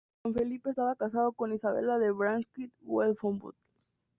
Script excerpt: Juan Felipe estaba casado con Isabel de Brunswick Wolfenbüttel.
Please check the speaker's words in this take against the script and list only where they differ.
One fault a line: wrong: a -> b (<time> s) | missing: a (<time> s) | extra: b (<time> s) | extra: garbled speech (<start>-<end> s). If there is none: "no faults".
no faults